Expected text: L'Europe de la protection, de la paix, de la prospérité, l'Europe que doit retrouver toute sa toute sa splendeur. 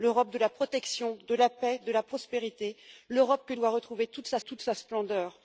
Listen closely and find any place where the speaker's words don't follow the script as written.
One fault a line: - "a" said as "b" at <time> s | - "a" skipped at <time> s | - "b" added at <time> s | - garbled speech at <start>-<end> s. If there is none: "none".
none